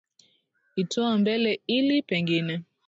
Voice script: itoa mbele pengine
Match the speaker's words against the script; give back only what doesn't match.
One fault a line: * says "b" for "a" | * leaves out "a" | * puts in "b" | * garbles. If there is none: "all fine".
* puts in "ili"